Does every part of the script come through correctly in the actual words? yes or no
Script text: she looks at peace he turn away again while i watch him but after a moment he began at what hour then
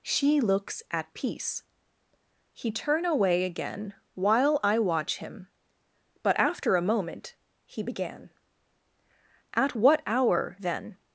yes